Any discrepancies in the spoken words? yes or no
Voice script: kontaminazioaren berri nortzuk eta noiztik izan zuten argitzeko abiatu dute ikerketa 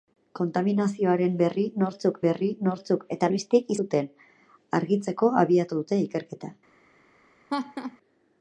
yes